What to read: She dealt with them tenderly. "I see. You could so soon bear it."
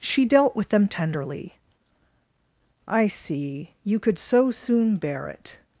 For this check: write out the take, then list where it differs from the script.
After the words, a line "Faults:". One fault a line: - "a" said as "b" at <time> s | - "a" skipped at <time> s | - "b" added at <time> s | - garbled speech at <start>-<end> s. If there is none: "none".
She dealt with them tenderly. "I see. You could so soon bear it."
Faults:
none